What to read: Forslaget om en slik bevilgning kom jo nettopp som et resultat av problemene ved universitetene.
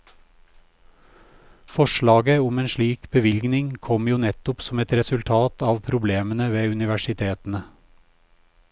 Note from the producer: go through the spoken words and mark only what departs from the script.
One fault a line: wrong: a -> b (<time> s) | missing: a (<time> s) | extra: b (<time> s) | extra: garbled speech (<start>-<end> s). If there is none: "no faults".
no faults